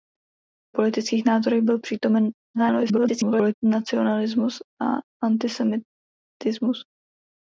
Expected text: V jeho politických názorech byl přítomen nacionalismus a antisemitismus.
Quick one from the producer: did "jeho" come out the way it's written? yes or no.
no